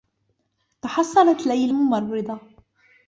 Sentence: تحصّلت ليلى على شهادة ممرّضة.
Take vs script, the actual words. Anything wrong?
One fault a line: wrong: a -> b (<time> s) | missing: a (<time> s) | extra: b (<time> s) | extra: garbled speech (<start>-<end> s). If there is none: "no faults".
missing: على شهادة (1.7 s)